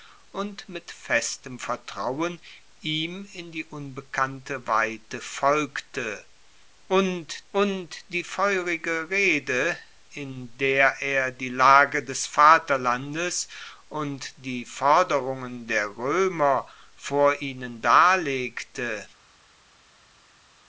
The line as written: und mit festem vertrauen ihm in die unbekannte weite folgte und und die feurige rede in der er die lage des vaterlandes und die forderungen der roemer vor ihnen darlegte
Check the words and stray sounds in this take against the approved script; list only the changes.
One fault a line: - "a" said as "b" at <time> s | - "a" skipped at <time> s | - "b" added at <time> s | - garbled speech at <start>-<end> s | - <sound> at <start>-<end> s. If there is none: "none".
none